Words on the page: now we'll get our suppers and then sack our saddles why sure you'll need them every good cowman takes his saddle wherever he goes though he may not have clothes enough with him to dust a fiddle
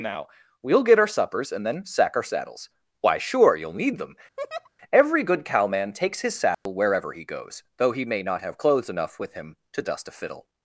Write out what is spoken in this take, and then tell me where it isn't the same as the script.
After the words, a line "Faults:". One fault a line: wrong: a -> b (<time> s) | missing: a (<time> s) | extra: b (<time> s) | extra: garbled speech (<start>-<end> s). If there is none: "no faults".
now we'll get our suppers and then sack our saddles why sure you'll need them every good cowman takes his saddle wherever he goes though he may not have clothes enough with him to dust a fiddle
Faults:
no faults